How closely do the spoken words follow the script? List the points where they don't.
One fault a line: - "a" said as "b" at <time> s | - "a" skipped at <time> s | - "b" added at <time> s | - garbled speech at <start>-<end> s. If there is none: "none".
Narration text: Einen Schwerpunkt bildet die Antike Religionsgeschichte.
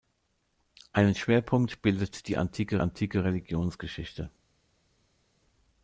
- "Antike" added at 2.8 s